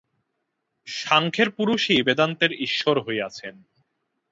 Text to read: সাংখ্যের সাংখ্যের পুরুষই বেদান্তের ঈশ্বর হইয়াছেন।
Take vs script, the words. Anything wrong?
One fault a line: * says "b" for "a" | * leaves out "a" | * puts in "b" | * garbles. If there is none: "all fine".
* leaves out "সাংখ্যের"